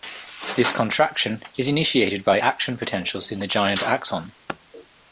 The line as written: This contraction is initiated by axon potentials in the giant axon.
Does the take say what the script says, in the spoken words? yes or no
no